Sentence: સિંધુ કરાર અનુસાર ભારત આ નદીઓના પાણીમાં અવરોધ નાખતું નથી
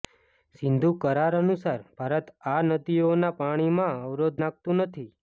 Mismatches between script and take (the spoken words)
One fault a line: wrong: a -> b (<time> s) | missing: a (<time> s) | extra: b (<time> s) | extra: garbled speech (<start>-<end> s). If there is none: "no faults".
no faults